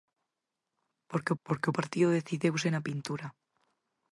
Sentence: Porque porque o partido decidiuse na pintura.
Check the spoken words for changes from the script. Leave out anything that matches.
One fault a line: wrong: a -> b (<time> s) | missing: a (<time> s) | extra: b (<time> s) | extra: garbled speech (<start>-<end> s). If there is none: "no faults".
no faults